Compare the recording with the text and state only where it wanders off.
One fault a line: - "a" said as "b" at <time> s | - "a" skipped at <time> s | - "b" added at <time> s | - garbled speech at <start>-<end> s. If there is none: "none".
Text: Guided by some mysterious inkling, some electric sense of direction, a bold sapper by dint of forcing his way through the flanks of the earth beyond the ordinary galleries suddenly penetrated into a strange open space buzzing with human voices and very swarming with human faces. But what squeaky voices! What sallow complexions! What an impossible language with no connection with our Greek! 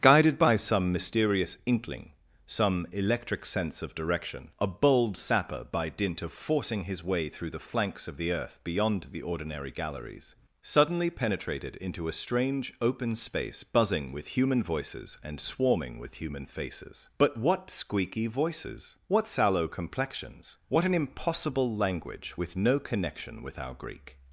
- "very" skipped at 15.4 s